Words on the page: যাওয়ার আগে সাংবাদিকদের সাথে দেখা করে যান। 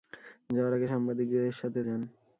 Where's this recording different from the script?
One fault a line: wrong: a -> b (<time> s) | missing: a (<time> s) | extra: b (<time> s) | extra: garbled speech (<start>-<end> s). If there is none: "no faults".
missing: দেখা করে (1.8 s)